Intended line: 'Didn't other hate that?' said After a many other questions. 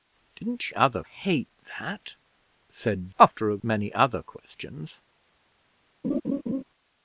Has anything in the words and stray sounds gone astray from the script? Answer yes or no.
yes